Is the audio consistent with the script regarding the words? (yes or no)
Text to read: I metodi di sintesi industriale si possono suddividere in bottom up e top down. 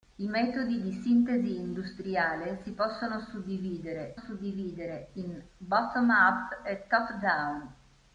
no